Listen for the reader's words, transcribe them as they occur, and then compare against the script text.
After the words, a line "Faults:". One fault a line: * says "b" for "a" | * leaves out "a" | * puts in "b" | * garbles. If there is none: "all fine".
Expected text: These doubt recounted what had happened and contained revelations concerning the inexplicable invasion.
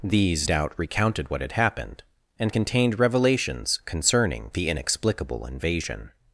These doubt recounted what had happened and contained revelations concerning the inexplicable invasion.
Faults:
all fine